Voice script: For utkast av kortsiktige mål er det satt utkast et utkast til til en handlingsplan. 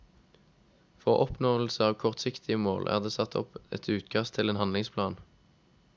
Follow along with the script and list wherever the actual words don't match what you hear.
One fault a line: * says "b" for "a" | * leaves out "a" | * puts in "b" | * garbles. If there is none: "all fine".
* says "oppnåelse" for "utkast"
* says "opp" for "utkast"
* leaves out "til"